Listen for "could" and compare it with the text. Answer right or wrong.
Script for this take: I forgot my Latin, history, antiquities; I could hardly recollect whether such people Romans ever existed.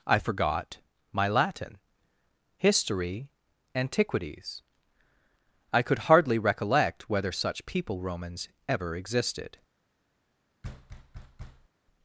right